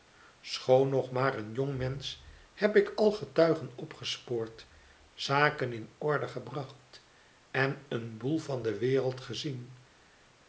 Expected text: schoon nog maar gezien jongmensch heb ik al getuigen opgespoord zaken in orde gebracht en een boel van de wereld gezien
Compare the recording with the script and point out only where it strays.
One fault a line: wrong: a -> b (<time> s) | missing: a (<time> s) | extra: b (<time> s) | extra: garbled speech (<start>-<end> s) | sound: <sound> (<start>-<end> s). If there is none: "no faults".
wrong: gezien -> een (1.4 s)